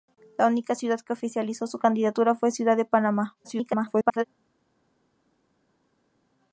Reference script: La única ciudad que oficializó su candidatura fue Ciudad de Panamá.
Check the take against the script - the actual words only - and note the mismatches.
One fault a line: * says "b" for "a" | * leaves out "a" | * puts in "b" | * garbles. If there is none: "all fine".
* garbles